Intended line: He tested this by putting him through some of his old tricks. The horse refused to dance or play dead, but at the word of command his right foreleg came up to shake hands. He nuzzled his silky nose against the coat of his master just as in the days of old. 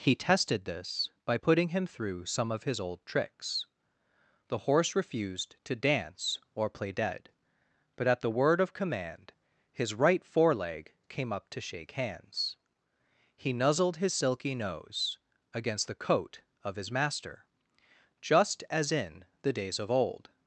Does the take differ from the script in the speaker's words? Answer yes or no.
no